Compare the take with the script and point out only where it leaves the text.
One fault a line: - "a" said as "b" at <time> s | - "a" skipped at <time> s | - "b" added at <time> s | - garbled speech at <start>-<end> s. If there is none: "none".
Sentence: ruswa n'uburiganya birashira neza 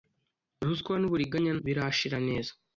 none